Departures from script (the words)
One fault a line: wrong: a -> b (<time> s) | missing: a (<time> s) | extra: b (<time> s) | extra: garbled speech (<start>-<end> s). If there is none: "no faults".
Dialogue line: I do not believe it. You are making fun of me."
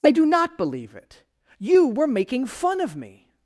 wrong: are -> were (1.9 s)